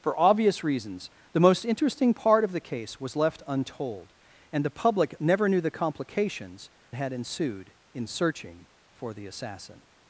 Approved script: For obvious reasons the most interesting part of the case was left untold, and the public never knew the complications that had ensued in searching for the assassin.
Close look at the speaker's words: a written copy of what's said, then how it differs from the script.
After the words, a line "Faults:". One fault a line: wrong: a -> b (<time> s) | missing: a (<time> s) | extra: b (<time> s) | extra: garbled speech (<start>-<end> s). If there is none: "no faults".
For obvious reasons the most interesting part of the case was left untold, and the public never knew the complications had ensued in searching for the assassin.
Faults:
missing: that (6.7 s)